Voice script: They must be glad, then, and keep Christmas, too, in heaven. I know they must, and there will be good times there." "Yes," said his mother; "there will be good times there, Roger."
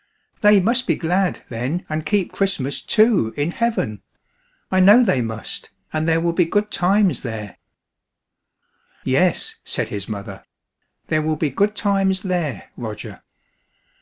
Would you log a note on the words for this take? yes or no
no